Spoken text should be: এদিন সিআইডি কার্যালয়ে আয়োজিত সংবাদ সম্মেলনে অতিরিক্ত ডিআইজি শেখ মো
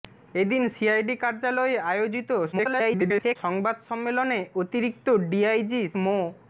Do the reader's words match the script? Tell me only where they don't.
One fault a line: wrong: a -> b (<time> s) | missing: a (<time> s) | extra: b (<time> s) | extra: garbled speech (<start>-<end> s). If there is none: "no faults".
extra: garbled speech (2.5-3.4 s)
missing: শেখ (5.8 s)